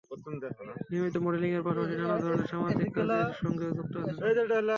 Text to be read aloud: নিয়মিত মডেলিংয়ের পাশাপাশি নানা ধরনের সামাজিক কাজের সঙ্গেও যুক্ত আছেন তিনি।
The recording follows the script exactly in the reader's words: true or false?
true